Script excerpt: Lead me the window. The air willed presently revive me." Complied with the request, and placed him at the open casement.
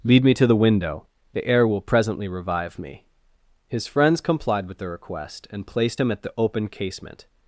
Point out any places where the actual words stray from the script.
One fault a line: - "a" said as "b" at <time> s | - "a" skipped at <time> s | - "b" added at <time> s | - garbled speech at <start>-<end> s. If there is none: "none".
- "to" added at 0.3 s
- "willed" said as "will" at 1.7 s
- "His friends" added at 3.7 s